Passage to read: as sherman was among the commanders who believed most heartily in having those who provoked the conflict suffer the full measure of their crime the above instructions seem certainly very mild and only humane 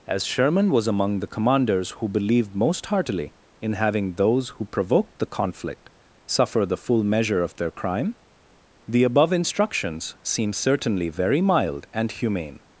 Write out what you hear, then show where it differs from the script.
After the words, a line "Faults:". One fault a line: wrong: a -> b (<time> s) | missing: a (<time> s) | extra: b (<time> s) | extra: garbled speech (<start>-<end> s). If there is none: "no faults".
as sherman was among the commanders who believed most heartily in having those who provoked the conflict suffer the full measure of their crime the above instructions seem certainly very mild and humane
Faults:
missing: only (12.1 s)